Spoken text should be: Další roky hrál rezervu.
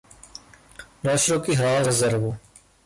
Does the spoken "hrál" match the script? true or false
true